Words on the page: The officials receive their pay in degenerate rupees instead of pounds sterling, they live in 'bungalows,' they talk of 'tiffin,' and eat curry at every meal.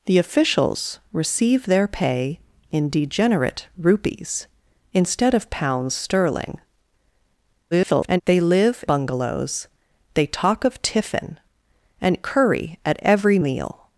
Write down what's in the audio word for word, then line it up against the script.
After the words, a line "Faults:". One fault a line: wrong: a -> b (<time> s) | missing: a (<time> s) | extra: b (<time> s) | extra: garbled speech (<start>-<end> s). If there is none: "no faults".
The officials receive their pay in degenerate rupees instead of pounds sterling, [garbled] they live 'bungalows,' they talk of 'tiffin,' and curry at every meal.
Faults:
extra: garbled speech (7.7-8.2 s)
missing: in (8.8 s)
missing: eat (12.2 s)